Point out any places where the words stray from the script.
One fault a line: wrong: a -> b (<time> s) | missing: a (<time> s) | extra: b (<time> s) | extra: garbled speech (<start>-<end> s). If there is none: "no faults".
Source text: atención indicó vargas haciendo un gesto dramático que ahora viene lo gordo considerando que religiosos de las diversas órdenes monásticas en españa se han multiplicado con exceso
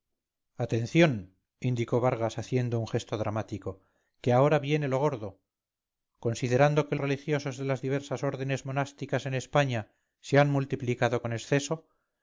no faults